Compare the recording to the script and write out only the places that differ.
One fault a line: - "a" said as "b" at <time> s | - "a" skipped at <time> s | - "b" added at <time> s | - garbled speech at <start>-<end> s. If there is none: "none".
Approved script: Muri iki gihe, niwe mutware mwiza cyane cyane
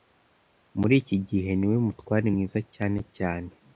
none